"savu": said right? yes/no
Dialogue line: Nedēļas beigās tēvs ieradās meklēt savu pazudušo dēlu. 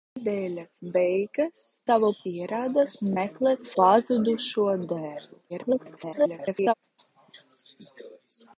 no